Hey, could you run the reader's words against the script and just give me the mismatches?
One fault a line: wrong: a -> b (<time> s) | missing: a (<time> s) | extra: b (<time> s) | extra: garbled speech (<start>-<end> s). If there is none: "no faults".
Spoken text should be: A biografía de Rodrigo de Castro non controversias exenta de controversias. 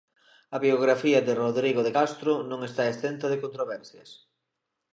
wrong: controversias -> está (2.7 s)